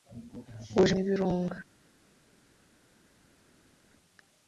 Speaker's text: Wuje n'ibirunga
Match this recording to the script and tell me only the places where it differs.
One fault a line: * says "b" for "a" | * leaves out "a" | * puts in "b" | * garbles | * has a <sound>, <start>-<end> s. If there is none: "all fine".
all fine